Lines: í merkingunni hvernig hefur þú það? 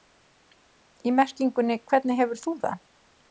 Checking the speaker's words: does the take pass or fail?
pass